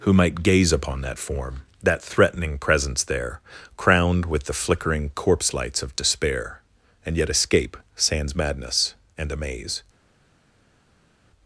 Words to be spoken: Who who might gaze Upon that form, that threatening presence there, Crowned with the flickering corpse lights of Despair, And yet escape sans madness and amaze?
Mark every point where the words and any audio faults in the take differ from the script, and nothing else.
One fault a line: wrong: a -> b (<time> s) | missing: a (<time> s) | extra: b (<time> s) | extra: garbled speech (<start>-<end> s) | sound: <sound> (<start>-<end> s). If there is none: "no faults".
missing: who (0.1 s)